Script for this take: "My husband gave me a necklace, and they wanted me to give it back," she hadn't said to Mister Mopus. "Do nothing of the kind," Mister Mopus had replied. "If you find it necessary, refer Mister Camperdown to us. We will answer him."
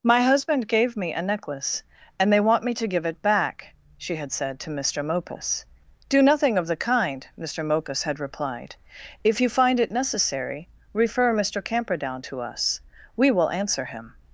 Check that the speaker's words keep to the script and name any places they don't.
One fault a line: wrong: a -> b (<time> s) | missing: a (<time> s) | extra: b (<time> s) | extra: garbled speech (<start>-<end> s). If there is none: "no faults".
wrong: wanted -> want (2.4 s)
wrong: hadn't -> had (4.2 s)